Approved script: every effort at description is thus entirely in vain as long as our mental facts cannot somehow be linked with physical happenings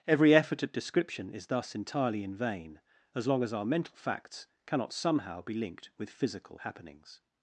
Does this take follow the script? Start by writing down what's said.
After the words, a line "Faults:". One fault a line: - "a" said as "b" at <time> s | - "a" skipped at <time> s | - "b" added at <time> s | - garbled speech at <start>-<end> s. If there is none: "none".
every effort at description is thus entirely in vain as long as our mental facts cannot somehow be linked with physical happenings
Faults:
none